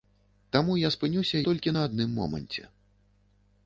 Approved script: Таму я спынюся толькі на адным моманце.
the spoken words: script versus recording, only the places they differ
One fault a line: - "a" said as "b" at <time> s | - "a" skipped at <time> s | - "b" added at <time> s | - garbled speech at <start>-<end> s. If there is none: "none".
none